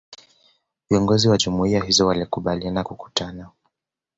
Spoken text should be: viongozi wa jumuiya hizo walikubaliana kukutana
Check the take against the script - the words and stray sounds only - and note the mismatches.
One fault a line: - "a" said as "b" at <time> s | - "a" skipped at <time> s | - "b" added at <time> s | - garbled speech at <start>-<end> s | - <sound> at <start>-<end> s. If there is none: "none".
none